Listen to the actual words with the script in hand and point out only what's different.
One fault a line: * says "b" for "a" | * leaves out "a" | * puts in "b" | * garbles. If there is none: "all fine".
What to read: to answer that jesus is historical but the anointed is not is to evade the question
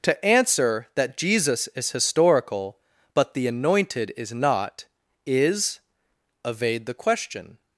* leaves out "to"